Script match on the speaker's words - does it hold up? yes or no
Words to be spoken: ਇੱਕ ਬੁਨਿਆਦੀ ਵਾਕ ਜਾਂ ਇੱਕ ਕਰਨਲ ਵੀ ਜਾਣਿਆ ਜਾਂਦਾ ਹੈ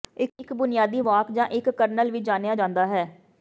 yes